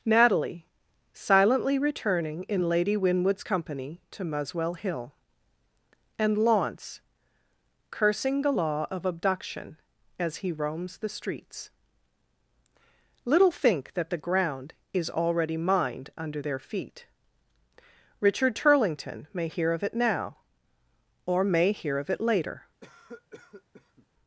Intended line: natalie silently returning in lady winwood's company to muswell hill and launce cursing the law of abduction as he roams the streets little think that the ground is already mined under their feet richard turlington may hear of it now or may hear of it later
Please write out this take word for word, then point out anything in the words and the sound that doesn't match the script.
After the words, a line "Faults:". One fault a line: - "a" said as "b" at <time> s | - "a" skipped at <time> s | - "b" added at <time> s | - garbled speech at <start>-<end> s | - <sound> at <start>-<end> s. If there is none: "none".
natalie silently returning in lady winwood's company to muswell hill and launce cursing the law of abduction as he roams the streets little think that the ground is already mined under their feet richard turlington may hear of it now or may hear of it later
Faults:
- cough at 22.8-24.1 s